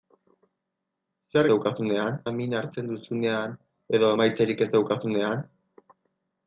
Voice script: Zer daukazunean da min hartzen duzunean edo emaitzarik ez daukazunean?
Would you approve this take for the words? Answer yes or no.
yes